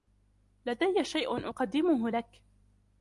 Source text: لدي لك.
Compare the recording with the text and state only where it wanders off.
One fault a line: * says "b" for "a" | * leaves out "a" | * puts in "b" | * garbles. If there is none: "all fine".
* puts in "شيء أقدمه"